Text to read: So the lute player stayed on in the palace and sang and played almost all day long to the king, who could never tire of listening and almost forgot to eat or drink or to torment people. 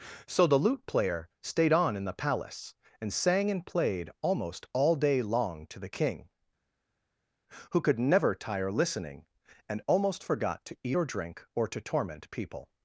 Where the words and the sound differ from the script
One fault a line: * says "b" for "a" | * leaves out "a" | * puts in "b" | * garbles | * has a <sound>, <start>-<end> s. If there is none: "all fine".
* leaves out "of"